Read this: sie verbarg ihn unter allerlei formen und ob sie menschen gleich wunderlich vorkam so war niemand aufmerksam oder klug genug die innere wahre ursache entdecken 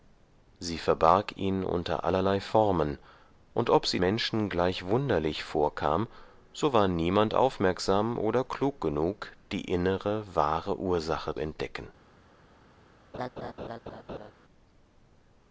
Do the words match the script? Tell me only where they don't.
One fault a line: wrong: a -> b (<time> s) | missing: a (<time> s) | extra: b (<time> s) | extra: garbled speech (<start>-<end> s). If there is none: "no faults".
no faults